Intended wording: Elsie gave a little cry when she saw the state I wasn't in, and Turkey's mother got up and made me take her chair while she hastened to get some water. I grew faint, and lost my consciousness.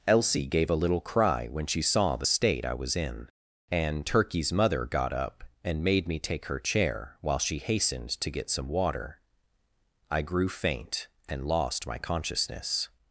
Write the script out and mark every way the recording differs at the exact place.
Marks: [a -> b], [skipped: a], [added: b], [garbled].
Elsie gave a little cry when she saw the state I [wasn't -> was] in, and Turkey's mother got up and made me take her chair while she hastened to get some water. I grew faint, and lost my consciousness.